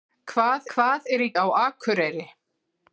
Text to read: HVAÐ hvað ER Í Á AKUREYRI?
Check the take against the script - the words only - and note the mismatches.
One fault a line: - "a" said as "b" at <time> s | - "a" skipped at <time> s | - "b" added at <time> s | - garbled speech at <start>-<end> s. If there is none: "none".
none